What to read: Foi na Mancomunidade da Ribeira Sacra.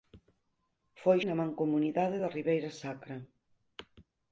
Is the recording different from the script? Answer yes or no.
no